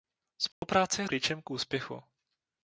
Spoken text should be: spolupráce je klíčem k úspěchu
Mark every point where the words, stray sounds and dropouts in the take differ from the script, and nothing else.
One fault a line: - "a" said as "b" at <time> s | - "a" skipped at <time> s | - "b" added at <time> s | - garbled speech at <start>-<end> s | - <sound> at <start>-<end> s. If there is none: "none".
- dropout at 0.5-0.6 s